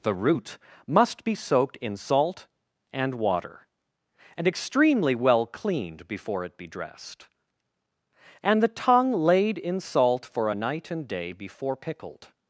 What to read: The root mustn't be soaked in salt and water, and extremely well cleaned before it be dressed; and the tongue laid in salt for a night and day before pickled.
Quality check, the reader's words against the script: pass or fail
fail